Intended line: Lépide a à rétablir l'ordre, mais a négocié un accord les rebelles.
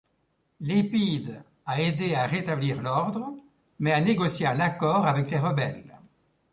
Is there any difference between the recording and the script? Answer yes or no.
yes